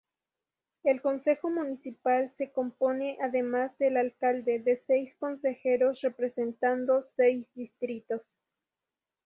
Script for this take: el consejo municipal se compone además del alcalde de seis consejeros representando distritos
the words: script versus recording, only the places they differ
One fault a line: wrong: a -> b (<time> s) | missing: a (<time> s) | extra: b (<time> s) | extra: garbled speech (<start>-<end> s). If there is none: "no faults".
extra: seis (7.0 s)